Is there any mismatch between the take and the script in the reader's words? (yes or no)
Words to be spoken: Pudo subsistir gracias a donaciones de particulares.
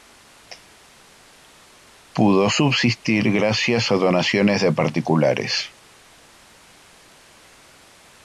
no